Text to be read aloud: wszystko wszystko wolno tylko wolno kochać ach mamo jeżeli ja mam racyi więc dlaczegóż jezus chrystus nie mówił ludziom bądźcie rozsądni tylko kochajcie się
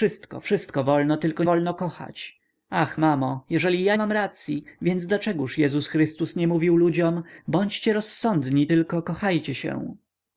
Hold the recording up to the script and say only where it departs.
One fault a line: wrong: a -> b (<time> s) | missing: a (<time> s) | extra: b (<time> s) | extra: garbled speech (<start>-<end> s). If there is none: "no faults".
no faults